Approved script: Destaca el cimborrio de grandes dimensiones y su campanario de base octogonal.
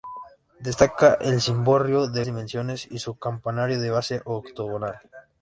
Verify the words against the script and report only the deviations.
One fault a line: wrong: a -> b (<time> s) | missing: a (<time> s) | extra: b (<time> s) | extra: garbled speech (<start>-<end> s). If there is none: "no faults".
missing: grandes (2.2 s)